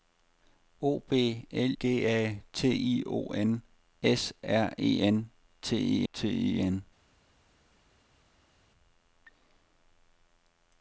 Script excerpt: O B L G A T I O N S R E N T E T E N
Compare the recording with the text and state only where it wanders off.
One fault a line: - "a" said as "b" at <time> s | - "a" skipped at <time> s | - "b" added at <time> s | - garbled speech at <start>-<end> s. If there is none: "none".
none